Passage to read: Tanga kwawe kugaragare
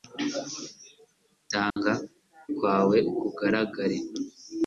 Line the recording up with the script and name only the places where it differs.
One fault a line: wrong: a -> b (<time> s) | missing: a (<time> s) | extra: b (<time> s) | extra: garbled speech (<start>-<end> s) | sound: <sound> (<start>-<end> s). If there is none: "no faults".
sound: dropout (1.7-1.8 s)